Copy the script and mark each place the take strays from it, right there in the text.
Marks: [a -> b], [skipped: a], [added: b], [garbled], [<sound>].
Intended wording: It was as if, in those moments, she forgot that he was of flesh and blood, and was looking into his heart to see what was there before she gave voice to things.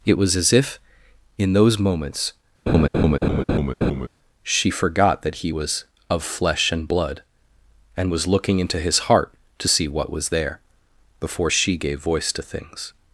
It was as if, in those moments, [laugh] she forgot that he was of flesh and blood, and was looking into his heart to see what was there before she gave voice to things.